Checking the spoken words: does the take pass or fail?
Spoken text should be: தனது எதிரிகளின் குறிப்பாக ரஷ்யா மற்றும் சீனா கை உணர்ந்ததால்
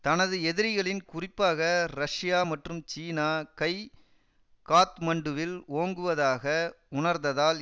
fail